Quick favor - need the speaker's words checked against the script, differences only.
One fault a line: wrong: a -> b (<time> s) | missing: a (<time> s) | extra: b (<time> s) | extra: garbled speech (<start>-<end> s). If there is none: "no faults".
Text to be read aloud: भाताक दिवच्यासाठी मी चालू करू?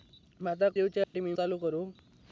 no faults